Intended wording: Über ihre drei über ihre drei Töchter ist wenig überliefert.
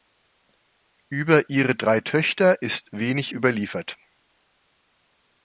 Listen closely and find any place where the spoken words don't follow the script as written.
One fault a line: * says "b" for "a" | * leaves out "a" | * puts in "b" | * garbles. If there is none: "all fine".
* leaves out "über ihre drei"